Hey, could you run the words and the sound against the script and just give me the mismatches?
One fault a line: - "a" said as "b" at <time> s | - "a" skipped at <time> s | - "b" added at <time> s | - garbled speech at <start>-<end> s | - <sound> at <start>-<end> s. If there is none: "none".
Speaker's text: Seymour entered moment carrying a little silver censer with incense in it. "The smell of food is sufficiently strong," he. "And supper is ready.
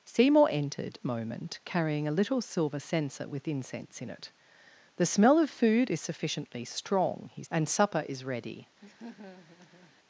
- laugh at 8.8-10.0 s